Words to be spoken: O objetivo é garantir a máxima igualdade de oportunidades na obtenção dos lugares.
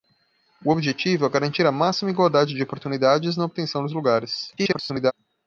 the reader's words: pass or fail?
fail